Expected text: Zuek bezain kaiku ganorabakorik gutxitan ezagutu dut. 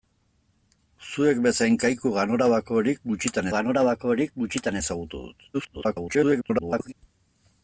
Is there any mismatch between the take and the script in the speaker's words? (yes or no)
yes